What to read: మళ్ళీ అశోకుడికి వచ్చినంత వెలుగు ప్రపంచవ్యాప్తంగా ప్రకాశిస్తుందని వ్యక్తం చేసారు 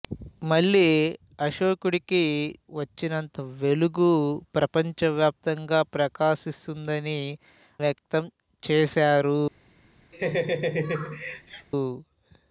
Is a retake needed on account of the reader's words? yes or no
no